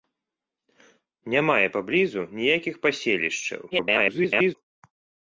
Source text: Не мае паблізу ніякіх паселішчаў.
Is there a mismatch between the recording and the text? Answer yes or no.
yes